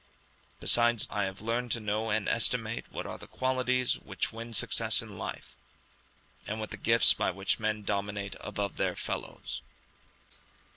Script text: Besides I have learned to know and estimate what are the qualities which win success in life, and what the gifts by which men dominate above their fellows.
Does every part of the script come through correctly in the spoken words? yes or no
yes